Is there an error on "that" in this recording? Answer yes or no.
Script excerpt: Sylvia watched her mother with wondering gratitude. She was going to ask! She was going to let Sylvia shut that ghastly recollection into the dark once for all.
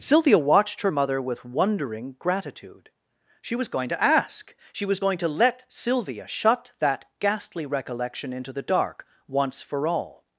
no